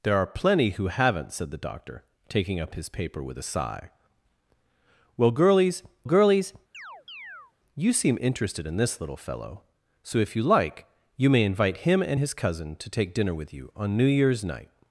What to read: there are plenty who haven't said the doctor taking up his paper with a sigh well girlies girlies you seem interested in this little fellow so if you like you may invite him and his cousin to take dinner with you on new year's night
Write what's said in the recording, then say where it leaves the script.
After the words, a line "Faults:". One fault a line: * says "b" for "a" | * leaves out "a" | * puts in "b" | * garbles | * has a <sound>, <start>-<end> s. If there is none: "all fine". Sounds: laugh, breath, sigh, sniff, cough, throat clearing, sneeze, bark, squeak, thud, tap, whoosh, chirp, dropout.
there are plenty who haven't said the doctor taking up his paper with a sigh well girlies girlies you seem interested in this little fellow so if you like you may invite him and his cousin to take dinner with you on new year's night
Faults:
* has a chirp, 6.7-7.5 s